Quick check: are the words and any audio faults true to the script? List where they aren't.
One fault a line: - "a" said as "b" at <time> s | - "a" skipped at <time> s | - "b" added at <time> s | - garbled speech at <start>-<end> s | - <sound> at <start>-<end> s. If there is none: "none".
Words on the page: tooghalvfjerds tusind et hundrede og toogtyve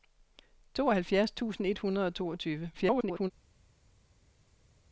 - garbled speech at 2.7-3.3 s